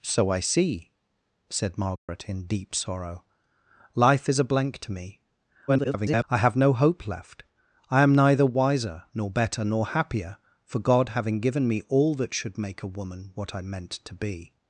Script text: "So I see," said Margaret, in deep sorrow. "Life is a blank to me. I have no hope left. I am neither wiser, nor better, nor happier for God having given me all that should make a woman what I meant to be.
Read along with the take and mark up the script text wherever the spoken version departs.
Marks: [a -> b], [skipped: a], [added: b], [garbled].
"So I see," said Margaret, in deep sorrow. "Life is a blank to me. [garbled] I have no hope left. I am neither wiser, nor better, nor happier for God having given me all that should make a woman what I meant to be.